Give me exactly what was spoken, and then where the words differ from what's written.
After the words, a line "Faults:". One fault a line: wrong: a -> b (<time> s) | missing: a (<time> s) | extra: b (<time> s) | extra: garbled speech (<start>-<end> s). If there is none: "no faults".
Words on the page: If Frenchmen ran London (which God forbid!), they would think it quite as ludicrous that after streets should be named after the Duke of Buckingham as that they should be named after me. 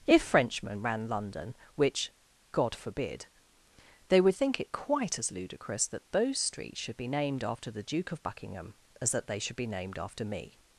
If Frenchmen ran London (which God forbid!), they would think it quite as ludicrous that those streets should be named after the Duke of Buckingham as that they should be named after me.
Faults:
wrong: after -> those (6.1 s)